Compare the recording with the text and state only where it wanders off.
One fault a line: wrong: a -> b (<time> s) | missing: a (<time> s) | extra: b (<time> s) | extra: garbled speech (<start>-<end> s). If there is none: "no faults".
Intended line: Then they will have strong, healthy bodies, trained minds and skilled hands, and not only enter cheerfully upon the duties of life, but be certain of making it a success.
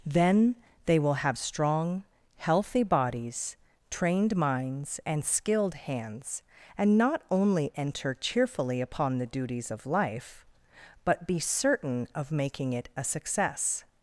no faults